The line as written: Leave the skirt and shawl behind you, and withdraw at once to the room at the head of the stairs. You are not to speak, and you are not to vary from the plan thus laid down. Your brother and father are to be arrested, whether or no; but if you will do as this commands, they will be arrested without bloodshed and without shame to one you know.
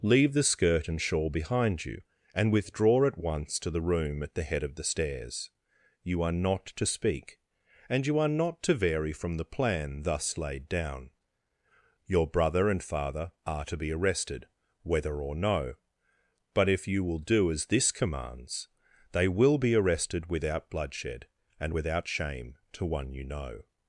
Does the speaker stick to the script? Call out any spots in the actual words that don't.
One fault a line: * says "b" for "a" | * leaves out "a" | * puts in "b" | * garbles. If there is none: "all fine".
all fine